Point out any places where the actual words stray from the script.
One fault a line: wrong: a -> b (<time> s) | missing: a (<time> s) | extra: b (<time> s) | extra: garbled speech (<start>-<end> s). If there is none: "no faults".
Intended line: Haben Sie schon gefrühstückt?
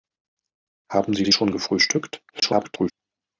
extra: Sie (1.2 s)
extra: garbled speech (2.3-2.9 s)